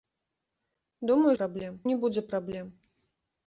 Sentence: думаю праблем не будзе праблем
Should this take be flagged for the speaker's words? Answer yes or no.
no